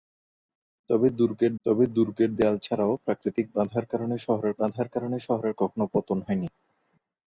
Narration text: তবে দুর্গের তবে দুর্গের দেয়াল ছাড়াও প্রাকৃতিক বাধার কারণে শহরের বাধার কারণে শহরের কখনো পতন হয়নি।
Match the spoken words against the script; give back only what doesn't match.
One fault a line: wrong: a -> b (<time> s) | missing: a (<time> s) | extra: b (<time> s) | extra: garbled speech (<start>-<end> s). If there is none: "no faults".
no faults